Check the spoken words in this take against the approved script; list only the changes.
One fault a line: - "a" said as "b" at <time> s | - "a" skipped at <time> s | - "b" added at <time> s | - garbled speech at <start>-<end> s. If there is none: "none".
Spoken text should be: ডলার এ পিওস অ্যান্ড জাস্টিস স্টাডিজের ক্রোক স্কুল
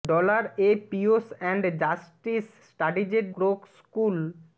none